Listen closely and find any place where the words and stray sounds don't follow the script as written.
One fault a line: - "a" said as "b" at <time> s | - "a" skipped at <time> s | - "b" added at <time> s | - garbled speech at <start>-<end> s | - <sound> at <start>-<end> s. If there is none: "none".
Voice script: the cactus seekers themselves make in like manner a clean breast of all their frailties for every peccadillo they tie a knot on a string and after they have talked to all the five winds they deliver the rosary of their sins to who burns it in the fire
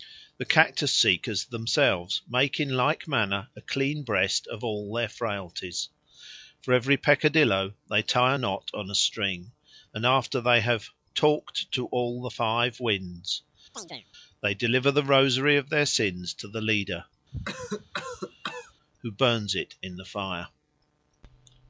- chirp at 13.7-14.1 s
- "the leader" added at 16.5 s
- cough at 17.3-18.7 s